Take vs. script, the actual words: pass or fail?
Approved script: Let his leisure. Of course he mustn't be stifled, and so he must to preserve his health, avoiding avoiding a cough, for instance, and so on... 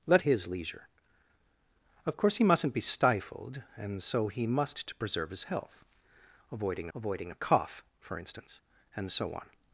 pass